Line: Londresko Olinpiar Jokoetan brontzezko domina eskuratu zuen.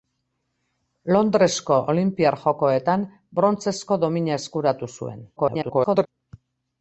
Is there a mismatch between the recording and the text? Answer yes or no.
yes